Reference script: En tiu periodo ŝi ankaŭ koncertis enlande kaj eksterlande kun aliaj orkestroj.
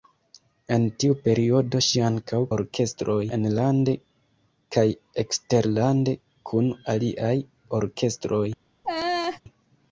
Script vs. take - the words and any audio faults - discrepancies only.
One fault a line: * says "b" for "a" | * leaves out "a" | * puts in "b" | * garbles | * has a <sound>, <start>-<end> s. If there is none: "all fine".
* says "orkestroj" for "koncertis"
* has a laugh, 8.8-9.4 s